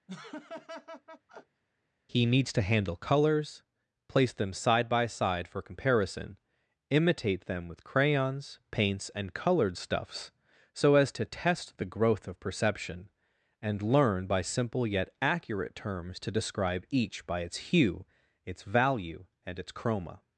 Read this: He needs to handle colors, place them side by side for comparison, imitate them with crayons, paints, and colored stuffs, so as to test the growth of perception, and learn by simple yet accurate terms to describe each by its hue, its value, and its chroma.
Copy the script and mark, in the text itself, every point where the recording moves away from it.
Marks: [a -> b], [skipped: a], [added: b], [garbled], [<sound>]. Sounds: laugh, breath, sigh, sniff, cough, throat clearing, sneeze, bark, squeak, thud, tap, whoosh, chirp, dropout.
[laugh] He needs to handle colors, place them side by side for comparison, imitate them with crayons, paints, and colored stuffs, so as to test the growth of perception, and learn by simple yet accurate terms to describe each by its hue, its value, and its chroma.